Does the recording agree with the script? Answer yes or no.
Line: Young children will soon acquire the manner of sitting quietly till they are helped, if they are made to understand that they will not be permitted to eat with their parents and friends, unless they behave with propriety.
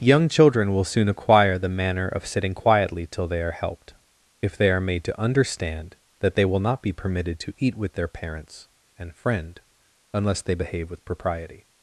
no